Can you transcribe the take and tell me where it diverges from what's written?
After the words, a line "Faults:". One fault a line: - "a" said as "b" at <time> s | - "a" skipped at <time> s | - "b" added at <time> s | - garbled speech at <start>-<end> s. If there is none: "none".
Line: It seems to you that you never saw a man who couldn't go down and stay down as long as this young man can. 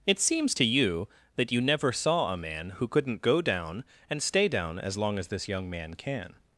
It seems to you that you never saw a man who couldn't go down and stay down as long as this young man can.
Faults:
none